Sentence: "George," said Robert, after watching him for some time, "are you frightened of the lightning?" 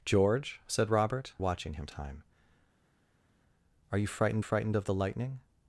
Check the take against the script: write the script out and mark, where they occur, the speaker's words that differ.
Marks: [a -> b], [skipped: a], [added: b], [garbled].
"George," said Robert, [skipped: after] watching him [skipped: for some] time, "are you frightened [added: frightened] of the lightning?"